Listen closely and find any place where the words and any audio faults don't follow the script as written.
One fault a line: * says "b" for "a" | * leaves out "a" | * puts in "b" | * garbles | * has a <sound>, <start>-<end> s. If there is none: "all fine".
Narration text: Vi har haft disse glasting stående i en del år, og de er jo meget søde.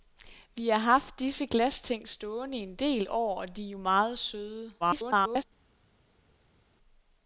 * garbles